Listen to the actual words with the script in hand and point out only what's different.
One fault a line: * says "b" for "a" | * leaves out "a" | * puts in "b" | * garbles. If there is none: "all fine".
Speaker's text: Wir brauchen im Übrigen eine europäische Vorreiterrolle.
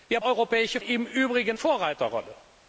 * says "europäische" for "brauchen"
* leaves out "eine europäische"